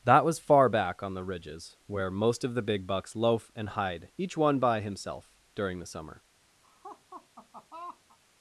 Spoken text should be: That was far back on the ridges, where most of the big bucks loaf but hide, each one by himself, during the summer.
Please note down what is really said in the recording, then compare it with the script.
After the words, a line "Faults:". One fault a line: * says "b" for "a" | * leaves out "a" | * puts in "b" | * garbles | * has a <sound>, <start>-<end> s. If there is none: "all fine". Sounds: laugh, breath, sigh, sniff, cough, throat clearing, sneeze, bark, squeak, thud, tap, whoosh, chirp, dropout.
That was far back on the ridges, where most of the big bucks loaf and hide, each one by himself, during the summer.
Faults:
* says "and" for "but"
* has a laugh, 6.6-8.2 s